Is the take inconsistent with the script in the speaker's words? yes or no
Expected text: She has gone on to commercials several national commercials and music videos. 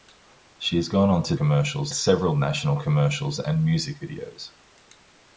no